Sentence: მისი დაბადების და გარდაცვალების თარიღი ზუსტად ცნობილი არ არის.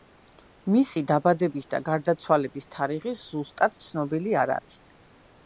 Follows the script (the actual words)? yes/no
yes